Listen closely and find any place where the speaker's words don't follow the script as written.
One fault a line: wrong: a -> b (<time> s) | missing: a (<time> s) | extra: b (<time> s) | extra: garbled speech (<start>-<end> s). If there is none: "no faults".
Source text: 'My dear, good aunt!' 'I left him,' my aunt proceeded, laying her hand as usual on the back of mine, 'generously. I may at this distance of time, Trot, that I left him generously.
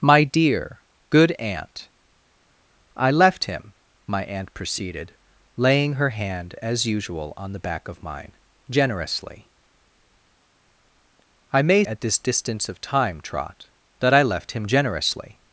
no faults